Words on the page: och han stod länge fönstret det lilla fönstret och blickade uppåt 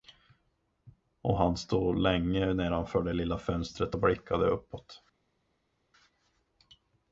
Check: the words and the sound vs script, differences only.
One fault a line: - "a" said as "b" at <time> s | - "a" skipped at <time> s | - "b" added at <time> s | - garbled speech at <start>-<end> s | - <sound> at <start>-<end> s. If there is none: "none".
- "fönstret" said as "nedanför" at 2.5 s